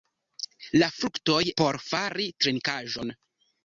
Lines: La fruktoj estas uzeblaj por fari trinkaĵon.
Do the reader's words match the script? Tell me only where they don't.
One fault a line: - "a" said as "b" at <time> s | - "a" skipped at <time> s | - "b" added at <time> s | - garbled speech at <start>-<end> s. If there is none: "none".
- "estas uzeblaj" skipped at 1.4 s